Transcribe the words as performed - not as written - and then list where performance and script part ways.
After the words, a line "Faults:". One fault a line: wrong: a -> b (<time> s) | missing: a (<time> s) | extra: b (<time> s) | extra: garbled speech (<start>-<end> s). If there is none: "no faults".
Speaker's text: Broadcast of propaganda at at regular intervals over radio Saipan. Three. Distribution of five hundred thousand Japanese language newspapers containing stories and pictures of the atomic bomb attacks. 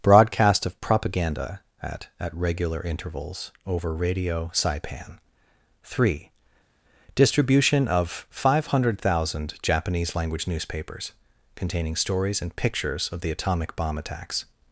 Broadcast of propaganda at at regular intervals over radio Saipan. Three. Distribution of five hundred thousand Japanese language newspapers containing stories and pictures of the atomic bomb attacks.
Faults:
no faults